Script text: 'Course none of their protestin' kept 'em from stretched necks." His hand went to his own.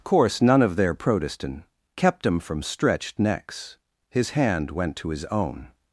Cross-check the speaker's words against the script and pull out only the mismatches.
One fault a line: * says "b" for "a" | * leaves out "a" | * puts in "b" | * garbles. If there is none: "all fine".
all fine